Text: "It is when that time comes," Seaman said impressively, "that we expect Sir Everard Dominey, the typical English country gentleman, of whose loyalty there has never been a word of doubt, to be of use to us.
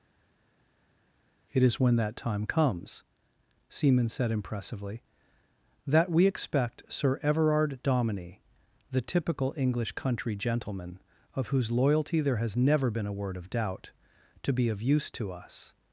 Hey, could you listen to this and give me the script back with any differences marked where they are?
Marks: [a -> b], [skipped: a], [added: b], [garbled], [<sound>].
"It is when that time comes," Seaman said impressively, "that we expect Sir Everard Dominey, the typical English country gentleman, of whose loyalty there has never been a word of doubt, to be of use to us.